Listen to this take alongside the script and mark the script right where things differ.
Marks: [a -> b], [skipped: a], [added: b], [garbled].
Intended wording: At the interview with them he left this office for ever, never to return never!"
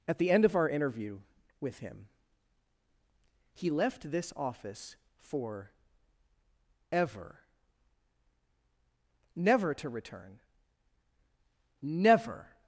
At the [added: end of our] interview with [them -> him] he left this office for ever, never to return never!"